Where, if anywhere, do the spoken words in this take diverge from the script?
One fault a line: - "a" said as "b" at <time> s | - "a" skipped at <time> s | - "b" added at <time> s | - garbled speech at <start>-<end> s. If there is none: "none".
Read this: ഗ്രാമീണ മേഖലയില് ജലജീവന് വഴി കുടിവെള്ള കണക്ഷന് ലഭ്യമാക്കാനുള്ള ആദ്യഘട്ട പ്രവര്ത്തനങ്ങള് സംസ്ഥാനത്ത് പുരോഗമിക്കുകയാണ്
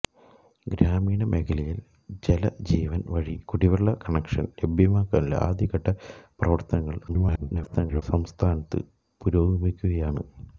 - garbled speech at 7.1-8.0 s